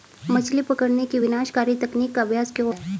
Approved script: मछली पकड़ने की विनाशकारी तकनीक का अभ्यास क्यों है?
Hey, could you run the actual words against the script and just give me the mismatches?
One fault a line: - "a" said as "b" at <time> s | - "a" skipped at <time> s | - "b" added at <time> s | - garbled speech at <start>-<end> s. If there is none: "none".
none